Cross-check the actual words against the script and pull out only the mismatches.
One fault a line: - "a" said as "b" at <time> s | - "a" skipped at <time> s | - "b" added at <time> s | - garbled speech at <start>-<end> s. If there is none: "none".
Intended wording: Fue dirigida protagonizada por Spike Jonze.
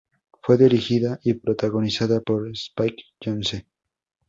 - "y" added at 1.2 s